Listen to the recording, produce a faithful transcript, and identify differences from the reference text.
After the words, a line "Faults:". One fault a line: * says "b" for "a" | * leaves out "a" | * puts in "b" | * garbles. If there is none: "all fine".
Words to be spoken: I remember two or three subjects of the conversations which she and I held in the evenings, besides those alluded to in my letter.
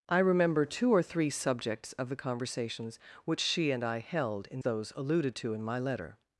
I remember two or three subjects of the conversations which she and I held in those alluded to in my letter.
Faults:
* leaves out "the evenings besides"